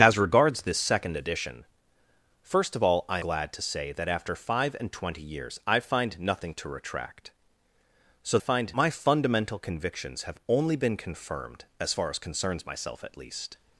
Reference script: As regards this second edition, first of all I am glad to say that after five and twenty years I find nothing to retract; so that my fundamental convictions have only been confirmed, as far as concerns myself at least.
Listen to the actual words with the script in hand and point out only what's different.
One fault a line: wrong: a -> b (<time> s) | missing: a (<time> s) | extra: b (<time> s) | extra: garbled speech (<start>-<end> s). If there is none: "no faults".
missing: am (3.2 s)
wrong: that -> find (8.4 s)